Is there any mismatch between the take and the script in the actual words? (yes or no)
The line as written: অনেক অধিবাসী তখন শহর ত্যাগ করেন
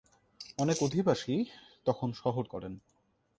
yes